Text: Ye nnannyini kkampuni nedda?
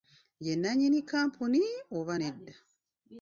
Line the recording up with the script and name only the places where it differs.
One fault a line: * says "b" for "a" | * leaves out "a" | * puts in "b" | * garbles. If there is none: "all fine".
* puts in "oba"